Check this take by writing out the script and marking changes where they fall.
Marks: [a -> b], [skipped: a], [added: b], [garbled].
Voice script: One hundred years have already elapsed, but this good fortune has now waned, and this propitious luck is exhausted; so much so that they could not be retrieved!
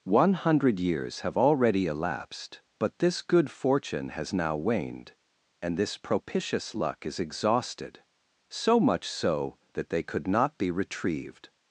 One hundred years have already elapsed, but this good fortune has now waned, and this propitious luck is exhausted; so much so that they could not be retrieved!